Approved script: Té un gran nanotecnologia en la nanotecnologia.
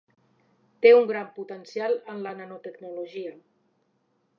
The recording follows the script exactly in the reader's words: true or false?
false